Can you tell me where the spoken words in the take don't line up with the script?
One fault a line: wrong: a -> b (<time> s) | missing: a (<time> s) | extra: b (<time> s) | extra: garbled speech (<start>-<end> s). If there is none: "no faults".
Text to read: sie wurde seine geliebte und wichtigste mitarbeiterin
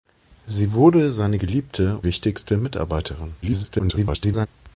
missing: und (2.0 s)
extra: garbled speech (3.4-4.5 s)